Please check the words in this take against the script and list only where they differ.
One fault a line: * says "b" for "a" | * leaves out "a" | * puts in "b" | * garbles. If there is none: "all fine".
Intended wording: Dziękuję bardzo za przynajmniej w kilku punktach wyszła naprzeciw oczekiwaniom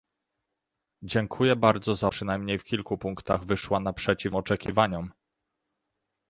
all fine